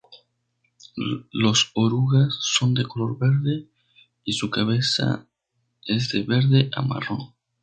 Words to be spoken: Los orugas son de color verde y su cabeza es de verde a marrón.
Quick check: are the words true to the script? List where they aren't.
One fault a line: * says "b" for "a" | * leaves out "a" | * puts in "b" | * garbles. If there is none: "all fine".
all fine